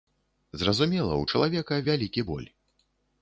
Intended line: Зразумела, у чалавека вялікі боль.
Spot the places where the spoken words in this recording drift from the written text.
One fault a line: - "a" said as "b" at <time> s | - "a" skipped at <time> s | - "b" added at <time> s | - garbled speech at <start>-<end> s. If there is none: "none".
none